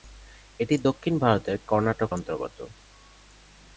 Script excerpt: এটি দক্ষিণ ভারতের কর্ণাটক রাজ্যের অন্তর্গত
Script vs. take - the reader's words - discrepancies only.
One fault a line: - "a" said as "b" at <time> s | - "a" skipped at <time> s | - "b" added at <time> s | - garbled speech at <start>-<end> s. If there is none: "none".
- "রাজ্যের" skipped at 2.1 s